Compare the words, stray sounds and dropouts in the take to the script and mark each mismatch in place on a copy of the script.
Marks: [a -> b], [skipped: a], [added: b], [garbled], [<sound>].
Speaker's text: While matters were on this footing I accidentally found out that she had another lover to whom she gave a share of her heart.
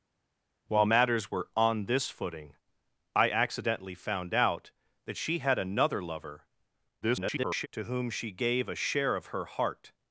While matters were on this footing I accidentally found out that she had another lover [garbled] to whom she gave a share of her heart.